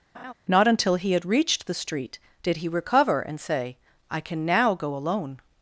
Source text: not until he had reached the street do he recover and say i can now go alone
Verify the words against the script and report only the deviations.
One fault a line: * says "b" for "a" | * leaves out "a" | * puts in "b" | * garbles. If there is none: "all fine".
* says "did" for "do"